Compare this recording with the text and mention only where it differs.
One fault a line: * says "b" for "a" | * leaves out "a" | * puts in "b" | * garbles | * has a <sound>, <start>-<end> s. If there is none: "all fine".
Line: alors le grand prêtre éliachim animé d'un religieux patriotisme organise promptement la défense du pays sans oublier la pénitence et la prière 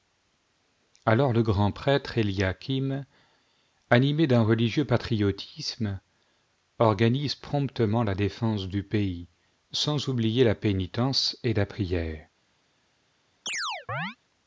* has a chirp, 13.5-14.2 s